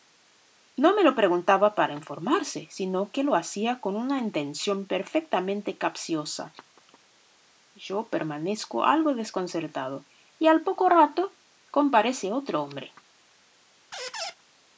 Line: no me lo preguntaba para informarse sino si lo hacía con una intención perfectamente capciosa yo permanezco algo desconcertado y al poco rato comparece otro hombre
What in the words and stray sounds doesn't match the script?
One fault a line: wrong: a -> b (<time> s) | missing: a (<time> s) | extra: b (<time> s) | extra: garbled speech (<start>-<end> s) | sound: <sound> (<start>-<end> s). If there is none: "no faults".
wrong: si -> que (3.1 s)
sound: squeak (13.9-14.3 s)